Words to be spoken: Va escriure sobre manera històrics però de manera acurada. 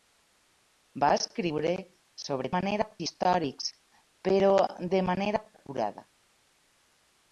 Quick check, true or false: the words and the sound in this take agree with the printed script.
true